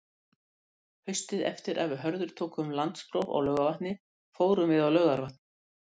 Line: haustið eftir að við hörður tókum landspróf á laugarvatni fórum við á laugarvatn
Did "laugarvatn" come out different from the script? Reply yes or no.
no